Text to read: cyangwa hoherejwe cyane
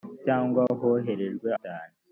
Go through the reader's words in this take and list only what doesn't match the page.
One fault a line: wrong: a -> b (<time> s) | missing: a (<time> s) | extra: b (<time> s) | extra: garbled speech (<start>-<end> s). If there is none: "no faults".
no faults